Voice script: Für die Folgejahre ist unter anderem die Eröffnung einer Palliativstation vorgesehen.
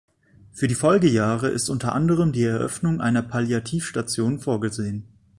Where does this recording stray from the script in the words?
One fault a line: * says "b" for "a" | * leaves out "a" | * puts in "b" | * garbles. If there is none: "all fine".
all fine